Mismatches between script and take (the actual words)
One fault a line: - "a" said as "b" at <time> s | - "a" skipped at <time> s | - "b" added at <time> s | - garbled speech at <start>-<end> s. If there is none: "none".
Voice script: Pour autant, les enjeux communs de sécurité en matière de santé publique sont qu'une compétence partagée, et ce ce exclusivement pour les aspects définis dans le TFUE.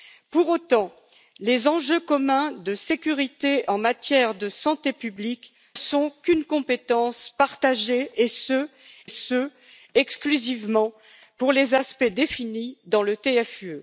none